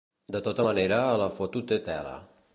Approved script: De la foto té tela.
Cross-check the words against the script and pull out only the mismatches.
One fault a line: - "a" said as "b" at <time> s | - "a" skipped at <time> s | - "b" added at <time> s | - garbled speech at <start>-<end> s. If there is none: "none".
- "tota manera" added at 0.5 s